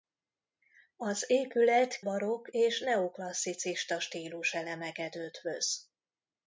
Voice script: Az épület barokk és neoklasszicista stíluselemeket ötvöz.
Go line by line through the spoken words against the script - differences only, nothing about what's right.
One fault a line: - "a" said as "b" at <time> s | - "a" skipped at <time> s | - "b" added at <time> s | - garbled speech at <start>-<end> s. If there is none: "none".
none